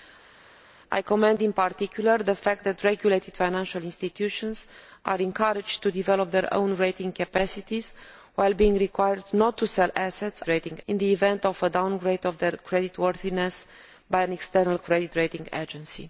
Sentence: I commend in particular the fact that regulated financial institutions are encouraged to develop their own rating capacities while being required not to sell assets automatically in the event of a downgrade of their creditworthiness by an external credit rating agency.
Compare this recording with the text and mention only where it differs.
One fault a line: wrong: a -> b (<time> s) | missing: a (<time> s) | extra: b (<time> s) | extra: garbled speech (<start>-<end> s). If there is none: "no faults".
wrong: automatically -> rating (10.5 s)